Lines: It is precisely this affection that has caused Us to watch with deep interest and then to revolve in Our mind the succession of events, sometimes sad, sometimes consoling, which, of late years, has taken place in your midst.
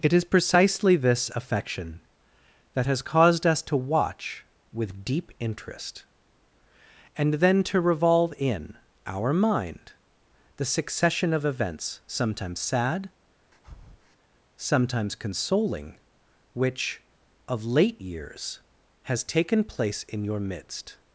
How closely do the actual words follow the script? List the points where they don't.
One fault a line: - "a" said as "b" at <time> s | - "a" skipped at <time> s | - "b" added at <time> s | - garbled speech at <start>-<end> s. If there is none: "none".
none